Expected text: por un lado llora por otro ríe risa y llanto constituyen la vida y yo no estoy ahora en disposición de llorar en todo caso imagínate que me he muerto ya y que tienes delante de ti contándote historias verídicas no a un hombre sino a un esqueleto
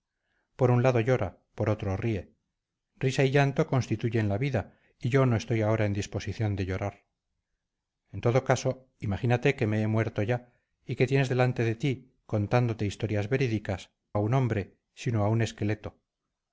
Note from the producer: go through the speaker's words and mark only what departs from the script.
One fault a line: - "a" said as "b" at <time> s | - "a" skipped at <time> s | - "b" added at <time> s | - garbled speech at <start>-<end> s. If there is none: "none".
- "no" skipped at 13.9 s